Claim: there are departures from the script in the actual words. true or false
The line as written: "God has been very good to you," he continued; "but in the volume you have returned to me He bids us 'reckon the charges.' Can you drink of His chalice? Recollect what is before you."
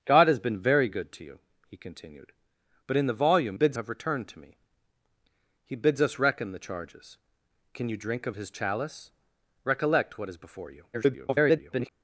true